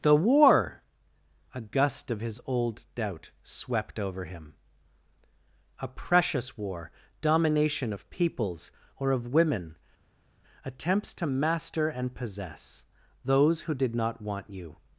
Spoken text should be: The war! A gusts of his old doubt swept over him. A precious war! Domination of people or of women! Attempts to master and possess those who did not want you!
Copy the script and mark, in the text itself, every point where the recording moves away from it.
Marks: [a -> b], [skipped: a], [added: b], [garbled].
The war! A [gusts -> gust] of his old doubt swept over him. A precious war! Domination of [people -> peoples] or of women! Attempts to master and possess those who did not want you!